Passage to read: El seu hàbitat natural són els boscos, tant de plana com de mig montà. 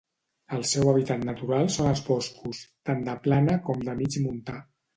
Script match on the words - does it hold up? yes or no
yes